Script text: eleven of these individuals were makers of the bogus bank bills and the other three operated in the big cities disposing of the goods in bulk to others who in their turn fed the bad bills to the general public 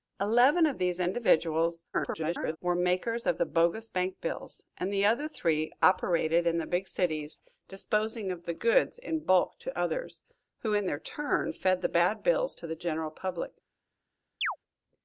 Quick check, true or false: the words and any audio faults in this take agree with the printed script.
false